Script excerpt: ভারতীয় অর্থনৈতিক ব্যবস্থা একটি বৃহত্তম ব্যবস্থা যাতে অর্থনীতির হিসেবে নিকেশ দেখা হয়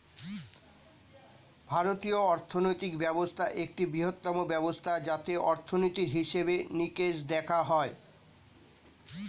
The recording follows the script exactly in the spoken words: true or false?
true